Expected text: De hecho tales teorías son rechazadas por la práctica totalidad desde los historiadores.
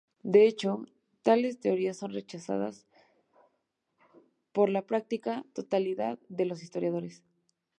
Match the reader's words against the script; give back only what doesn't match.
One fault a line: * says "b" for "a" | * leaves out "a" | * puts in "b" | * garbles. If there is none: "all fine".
* says "de" for "desde"